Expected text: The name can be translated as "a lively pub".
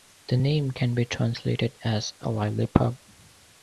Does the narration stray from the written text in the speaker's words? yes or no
no